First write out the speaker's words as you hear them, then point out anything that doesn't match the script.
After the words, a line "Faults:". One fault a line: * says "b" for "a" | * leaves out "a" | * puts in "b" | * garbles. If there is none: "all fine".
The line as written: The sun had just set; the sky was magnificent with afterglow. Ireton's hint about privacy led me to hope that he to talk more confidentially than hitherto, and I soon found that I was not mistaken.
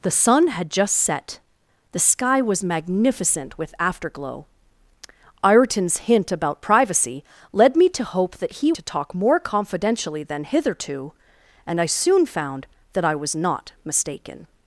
The sun had just set; the sky was magnificent with afterglow. Ireton's hint about privacy led me to hope that he to talk more confidentially than hitherto, and I soon found that I was not mistaken.
Faults:
all fine